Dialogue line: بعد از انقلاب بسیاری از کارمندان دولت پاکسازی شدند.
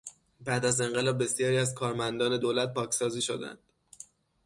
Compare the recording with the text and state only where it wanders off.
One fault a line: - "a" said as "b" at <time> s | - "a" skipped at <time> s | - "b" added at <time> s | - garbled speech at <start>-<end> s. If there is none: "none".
none